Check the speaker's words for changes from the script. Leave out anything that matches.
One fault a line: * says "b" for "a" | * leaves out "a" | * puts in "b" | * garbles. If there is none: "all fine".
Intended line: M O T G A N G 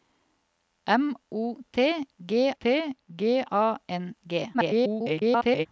* puts in "T G"
* garbles